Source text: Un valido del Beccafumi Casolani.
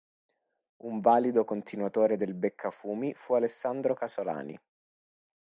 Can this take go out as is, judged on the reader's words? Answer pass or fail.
fail